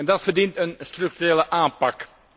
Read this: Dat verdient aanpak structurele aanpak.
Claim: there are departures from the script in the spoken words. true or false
true